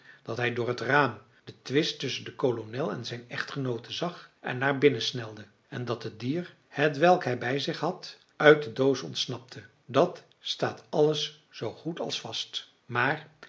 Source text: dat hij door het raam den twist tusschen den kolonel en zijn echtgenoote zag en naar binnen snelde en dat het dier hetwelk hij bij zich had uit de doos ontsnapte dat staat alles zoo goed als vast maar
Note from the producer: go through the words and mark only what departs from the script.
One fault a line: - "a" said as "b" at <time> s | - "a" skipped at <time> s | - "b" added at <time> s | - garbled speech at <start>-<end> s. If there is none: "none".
none